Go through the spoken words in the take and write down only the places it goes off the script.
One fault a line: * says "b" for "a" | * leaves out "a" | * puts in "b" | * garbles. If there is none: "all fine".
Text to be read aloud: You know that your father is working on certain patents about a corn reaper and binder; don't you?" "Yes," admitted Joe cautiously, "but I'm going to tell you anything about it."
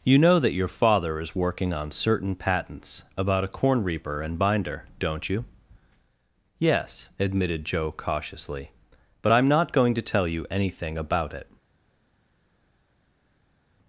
* puts in "not"